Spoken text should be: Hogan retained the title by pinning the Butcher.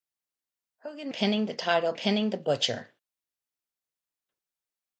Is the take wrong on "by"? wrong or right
wrong